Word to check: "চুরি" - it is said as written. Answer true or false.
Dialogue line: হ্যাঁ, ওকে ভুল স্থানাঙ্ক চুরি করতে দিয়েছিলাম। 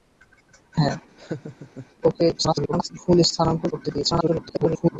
false